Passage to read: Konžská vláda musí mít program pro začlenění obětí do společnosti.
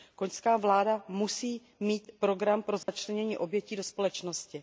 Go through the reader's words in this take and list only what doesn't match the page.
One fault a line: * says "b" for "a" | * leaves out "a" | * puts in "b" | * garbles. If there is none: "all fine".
all fine